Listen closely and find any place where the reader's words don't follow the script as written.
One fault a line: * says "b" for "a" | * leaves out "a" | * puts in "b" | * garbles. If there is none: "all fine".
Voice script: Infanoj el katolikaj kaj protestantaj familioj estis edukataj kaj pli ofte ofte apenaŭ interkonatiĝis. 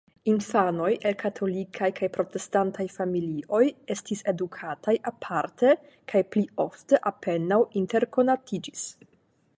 * puts in "aparte"
* leaves out "ofte"